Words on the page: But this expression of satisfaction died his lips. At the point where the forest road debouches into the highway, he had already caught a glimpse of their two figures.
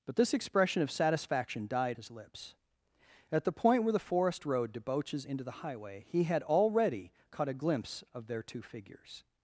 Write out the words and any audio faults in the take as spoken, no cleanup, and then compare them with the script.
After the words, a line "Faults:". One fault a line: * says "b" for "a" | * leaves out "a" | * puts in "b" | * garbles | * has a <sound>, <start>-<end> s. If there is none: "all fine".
But this expression of satisfaction died his lips. At the point where the forest road debouches into the highway, he had already caught a glimpse of their two figures.
Faults:
all fine